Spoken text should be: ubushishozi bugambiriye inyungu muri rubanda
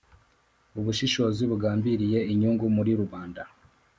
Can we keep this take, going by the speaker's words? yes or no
yes